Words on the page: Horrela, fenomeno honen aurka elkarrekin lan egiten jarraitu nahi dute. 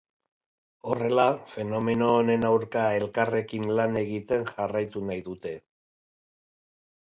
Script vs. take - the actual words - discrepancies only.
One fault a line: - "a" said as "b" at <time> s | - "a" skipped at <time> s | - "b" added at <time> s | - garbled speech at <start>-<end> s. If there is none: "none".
none